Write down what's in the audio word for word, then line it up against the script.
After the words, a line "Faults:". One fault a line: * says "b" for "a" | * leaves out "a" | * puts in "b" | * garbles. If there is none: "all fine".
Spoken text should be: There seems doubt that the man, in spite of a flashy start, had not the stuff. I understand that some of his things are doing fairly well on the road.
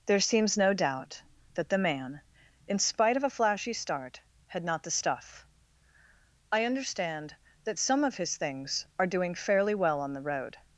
There seems no doubt that the man, in spite of a flashy start, had not the stuff. I understand that some of his things are doing fairly well on the road.
Faults:
* puts in "no"